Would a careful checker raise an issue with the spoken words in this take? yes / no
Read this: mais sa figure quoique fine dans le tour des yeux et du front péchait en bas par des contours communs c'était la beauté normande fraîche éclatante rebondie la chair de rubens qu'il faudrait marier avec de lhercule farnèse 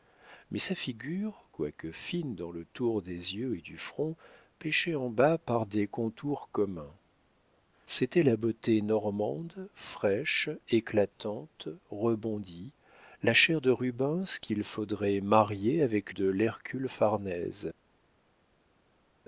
no